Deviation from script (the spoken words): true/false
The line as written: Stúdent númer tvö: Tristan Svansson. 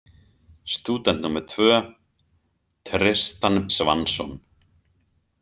false